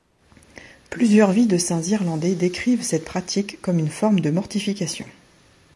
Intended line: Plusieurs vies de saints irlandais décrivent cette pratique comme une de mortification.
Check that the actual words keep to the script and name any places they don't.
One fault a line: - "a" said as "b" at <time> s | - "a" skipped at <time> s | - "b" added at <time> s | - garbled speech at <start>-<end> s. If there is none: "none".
- "forme" added at 3.9 s